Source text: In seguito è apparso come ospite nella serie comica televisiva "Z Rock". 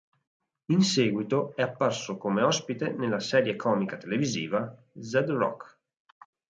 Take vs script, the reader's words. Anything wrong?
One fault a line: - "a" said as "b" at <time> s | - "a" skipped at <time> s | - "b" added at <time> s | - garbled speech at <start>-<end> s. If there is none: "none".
none